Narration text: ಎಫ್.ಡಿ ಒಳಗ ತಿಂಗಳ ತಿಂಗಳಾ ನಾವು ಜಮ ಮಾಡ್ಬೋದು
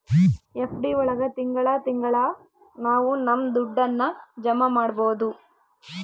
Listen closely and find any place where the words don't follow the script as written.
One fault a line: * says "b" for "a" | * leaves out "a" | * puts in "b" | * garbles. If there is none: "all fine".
* puts in "ನಮ್ ದುಡ್ಡನ್ನ"